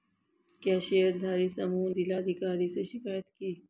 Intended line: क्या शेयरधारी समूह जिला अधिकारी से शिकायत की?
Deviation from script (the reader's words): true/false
false